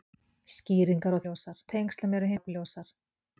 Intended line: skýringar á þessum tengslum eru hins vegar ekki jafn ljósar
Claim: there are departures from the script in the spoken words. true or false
true